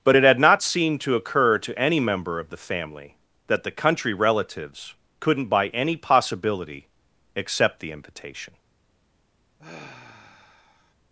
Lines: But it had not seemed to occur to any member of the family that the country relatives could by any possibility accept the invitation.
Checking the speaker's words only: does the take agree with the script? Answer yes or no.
no